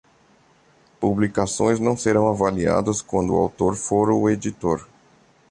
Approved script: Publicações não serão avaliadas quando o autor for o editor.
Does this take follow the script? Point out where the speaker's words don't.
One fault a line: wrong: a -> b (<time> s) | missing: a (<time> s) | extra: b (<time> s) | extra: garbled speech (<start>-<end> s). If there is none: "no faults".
no faults